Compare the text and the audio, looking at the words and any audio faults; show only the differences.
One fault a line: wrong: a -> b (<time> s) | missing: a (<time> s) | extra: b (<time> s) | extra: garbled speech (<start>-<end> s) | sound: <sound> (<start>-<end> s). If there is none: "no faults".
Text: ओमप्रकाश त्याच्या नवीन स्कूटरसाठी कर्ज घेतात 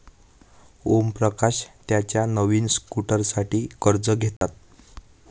sound: dropout (4.4-4.4 s)